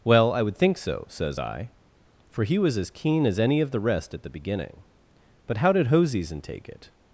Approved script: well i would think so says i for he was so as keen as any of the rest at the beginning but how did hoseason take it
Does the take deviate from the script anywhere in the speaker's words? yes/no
yes